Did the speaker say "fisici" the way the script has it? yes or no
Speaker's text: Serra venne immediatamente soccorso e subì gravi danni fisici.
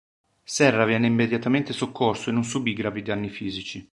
yes